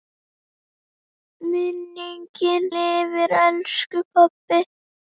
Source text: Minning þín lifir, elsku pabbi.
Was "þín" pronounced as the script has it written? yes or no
no